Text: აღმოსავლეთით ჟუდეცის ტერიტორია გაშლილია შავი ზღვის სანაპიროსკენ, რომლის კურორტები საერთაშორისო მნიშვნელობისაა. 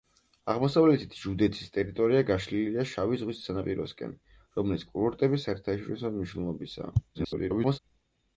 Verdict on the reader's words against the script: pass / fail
fail